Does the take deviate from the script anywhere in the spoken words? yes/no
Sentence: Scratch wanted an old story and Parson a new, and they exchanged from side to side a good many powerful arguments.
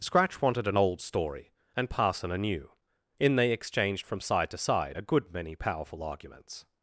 yes